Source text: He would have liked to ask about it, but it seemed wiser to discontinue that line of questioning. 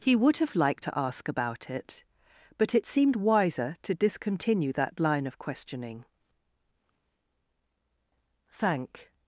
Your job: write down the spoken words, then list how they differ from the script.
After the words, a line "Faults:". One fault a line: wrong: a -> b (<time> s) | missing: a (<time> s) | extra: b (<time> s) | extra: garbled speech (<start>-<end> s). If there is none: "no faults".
He would have liked to ask about it, but it seemed wiser to discontinue that line of questioning. "Thank
Faults:
extra: Thank (8.5 s)